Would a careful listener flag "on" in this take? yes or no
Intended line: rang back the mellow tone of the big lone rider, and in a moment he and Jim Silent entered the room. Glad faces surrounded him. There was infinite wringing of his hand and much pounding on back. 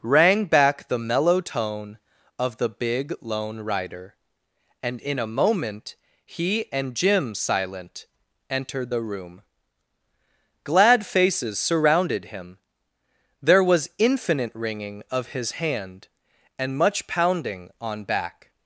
no